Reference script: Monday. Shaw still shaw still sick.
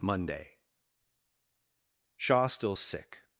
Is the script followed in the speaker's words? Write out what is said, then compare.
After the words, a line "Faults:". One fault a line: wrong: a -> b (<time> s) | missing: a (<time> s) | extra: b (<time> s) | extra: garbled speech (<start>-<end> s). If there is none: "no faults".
Monday. Shaw still sick.
Faults:
missing: shaw still (2.7 s)